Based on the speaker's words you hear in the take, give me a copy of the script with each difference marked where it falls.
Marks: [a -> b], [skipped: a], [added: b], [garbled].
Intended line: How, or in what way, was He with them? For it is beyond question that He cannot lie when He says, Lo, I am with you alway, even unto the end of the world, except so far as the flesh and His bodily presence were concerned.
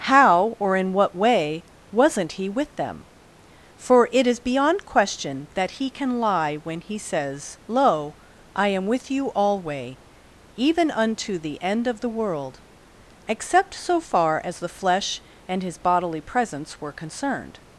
How, or in what way, [was -> wasn't] He with them? For it is beyond question that He [cannot -> can] lie when He says, Lo, I am with you alway, even unto the end of the world, except so far as the flesh and His bodily presence were concerned.